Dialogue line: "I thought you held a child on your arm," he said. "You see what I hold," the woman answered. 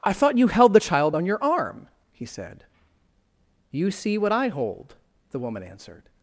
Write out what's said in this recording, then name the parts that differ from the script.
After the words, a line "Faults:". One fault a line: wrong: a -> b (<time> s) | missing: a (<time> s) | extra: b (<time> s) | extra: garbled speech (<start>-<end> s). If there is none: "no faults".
"I thought you held the child on your arm," he said. "You see what I hold," the woman answered.
Faults:
wrong: a -> the (0.7 s)